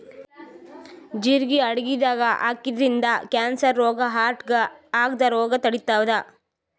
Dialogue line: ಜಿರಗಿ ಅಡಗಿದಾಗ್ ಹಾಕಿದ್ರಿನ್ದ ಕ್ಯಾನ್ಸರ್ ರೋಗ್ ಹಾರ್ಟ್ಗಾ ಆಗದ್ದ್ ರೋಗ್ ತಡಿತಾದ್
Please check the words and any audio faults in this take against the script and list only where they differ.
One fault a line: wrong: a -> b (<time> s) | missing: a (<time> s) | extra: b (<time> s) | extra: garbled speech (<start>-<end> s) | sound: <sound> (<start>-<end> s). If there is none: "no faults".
no faults